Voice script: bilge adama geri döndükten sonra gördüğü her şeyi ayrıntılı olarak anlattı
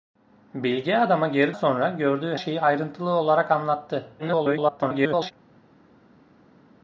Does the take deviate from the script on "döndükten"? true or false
true